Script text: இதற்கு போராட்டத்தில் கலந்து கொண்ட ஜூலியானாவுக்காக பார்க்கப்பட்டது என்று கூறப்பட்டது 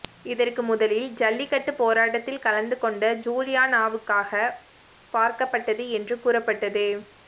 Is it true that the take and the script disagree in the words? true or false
true